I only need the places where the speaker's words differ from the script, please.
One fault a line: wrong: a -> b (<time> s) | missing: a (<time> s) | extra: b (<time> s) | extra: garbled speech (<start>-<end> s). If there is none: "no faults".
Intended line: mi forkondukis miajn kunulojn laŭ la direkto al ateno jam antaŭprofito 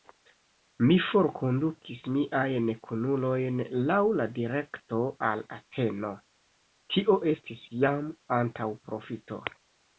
extra: tio estis (7.0 s)